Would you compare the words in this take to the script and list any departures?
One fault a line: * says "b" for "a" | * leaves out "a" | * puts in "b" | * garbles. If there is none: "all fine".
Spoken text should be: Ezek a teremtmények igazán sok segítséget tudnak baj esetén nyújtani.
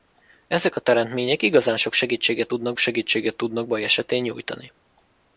* puts in "segítséget tudnak"